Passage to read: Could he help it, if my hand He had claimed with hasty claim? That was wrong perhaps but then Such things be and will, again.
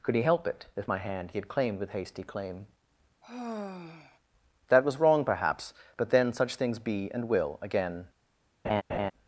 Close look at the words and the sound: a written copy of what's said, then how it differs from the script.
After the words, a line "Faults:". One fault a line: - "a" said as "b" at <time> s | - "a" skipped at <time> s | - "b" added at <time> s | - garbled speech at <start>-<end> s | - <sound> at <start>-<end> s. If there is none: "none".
Could he help it, if my hand He had claimed with hasty claim? That was wrong perhaps but then Such things be and will, again.
Faults:
- sigh at 3.2-4.2 s
- laugh at 8.6-9.1 s